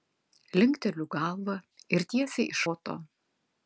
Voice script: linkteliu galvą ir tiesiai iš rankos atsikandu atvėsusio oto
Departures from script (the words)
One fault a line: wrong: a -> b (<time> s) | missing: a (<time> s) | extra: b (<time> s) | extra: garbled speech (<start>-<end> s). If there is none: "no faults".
missing: rankos atsikandu atvėsusio (2.6 s)